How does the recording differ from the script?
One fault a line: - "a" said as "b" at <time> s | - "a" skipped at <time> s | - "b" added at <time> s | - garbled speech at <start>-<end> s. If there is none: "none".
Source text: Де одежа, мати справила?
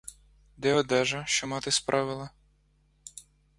- "що" added at 1.3 s